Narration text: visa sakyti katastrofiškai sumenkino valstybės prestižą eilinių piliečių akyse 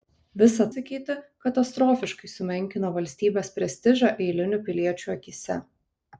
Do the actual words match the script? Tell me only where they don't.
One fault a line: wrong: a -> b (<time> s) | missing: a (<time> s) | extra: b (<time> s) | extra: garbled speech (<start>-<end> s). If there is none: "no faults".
no faults